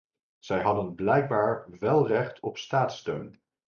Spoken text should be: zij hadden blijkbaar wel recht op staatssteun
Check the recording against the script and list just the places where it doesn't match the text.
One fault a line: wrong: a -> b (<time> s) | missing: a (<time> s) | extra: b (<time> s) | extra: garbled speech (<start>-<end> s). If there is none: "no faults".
no faults